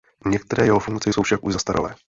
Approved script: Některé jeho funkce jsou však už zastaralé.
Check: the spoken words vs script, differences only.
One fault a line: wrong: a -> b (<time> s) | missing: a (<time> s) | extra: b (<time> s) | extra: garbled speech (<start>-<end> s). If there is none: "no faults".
no faults